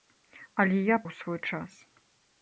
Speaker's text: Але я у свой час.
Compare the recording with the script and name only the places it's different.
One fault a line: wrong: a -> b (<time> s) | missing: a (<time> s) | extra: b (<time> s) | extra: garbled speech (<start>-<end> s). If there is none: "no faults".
no faults